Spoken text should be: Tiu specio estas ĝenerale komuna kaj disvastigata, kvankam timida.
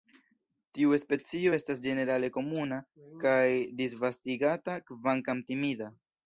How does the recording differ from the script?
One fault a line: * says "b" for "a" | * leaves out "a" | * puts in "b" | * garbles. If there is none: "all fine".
all fine